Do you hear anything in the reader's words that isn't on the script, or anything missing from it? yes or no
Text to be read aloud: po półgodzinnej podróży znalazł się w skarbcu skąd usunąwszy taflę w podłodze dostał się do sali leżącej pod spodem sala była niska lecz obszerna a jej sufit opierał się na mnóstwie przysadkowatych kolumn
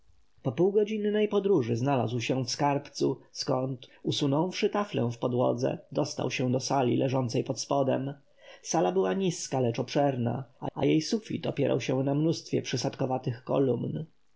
yes